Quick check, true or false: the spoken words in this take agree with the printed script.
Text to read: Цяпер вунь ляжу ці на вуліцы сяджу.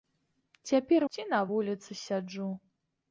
false